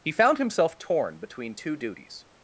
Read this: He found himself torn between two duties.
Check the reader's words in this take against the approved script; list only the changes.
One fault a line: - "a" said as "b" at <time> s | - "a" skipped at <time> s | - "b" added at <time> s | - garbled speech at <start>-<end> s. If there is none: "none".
none